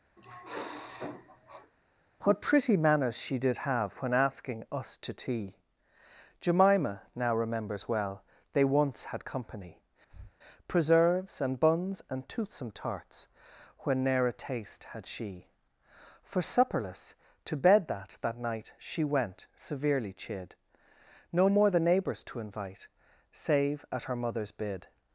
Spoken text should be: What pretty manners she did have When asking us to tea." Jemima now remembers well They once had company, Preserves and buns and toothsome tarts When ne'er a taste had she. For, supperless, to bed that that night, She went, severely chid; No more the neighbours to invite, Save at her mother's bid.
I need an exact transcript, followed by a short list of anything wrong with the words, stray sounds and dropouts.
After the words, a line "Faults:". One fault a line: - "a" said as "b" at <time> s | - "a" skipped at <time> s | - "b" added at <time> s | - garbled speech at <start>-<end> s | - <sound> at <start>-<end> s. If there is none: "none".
What pretty manners she did have When asking us to tea." Jemima now remembers well They once had company, Preserves and buns and toothsome tarts When ne'er a taste had she. For, supperless, to bed that that night, She went, severely chid; No more the neighbours to invite, Save at her mother's bid.
Faults:
- sniff at 0.2-1.7 s
- breath at 10.1-10.3 s